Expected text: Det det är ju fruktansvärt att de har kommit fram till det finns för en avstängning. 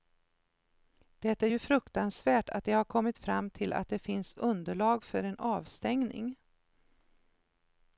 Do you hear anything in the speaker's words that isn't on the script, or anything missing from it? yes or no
yes